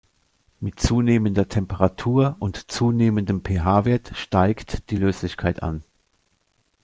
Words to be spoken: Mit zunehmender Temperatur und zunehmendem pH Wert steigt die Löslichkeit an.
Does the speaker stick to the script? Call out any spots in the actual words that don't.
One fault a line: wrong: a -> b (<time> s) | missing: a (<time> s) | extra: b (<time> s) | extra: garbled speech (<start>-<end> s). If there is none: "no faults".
no faults